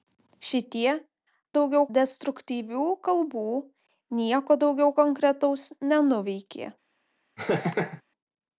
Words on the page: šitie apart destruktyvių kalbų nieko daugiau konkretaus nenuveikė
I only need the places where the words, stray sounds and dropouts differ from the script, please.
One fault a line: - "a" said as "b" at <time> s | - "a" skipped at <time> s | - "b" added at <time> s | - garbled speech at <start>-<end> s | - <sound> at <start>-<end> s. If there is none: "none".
- "apart" said as "daugiau" at 1.6 s
- laugh at 7.4-8.0 s